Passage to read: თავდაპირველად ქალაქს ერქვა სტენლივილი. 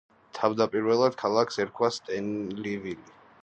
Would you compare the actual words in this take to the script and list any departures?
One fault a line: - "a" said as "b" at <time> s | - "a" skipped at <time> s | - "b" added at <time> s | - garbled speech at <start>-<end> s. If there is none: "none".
none